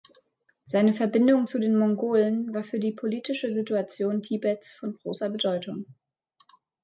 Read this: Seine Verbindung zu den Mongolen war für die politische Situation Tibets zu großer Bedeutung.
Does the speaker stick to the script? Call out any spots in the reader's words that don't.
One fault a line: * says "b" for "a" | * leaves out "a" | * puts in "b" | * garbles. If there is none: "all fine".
* says "von" for "zu"